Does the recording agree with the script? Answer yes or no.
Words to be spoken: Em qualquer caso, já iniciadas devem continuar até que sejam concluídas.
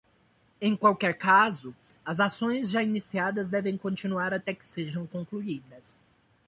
no